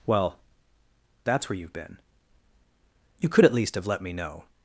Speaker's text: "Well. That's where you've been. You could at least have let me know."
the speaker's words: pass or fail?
pass